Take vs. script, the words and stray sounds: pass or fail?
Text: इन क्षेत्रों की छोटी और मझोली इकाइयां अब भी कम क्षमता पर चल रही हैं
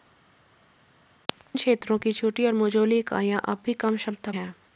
fail